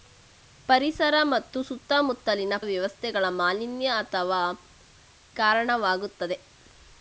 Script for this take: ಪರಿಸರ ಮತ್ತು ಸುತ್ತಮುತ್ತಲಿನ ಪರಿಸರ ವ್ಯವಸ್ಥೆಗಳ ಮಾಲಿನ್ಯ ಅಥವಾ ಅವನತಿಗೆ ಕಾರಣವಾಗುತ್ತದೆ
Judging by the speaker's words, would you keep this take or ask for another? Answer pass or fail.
fail